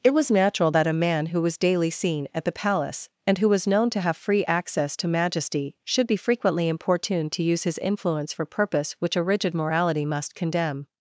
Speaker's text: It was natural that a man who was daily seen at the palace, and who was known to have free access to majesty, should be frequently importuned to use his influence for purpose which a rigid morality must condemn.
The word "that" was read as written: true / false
true